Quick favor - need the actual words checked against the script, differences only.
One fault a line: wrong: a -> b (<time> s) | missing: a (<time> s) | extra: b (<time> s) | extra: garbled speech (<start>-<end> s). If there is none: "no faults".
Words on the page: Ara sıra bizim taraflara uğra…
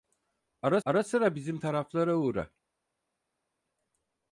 extra: ara (0.8 s)